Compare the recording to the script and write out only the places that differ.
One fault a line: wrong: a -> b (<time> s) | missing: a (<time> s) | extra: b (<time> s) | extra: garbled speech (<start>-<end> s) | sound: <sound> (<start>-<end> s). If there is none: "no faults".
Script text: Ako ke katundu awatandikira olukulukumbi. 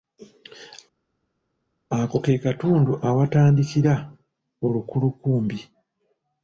no faults